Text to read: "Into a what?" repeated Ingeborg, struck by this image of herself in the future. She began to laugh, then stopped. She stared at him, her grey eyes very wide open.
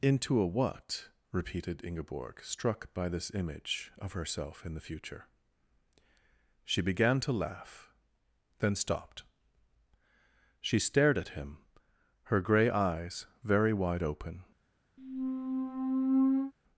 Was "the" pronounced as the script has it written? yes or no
yes